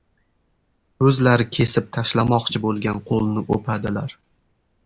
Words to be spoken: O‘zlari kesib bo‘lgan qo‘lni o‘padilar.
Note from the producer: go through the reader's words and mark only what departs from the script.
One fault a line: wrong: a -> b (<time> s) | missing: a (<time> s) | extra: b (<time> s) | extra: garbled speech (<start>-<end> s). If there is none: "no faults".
extra: tashlamoqchi (2.0 s)